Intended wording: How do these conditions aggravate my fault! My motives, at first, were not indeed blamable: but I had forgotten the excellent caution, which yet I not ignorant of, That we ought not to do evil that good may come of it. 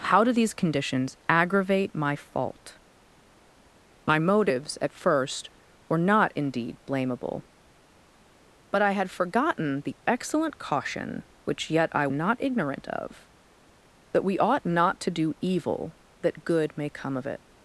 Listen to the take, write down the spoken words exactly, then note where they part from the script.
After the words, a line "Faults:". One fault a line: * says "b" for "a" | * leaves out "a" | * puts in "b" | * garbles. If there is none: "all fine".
How do these conditions aggravate my fault! My motives, at first, were not indeed blamable: but I had forgotten the excellent caution, which yet I not ignorant of, That we ought not to do evil that good may come of it.
Faults:
all fine